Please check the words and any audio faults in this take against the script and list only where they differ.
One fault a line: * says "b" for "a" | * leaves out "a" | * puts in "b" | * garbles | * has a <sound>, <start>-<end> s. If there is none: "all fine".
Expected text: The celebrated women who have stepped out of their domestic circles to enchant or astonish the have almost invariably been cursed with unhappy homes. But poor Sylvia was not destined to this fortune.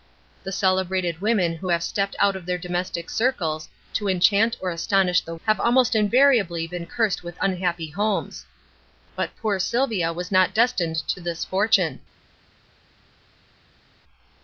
all fine